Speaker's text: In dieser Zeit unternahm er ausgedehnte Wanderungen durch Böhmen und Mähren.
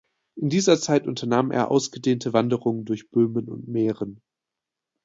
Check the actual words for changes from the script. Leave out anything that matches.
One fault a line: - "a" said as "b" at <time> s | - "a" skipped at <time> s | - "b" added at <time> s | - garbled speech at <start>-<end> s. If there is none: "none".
none